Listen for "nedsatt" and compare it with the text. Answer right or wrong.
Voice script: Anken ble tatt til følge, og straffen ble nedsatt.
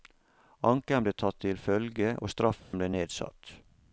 right